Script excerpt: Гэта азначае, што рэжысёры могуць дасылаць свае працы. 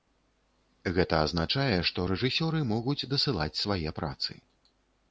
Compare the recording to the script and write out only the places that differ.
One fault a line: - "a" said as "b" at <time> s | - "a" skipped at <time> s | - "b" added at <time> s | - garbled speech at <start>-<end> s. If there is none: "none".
none